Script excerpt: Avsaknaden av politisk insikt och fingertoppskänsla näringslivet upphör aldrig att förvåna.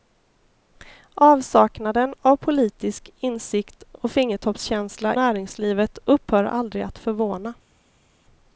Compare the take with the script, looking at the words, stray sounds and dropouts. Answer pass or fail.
pass